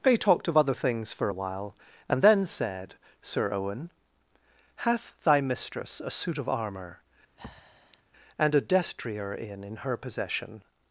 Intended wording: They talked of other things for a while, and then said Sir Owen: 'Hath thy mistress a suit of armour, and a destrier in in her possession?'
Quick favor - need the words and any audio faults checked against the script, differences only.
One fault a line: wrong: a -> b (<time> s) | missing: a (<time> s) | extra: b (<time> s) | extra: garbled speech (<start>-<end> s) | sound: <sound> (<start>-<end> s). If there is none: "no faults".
sound: breath (7.4-8.0 s)